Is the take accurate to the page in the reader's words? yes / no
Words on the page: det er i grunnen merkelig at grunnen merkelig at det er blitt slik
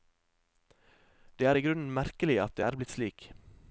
no